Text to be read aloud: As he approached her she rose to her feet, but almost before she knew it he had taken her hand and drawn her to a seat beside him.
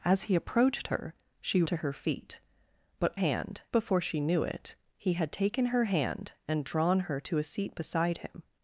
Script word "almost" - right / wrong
wrong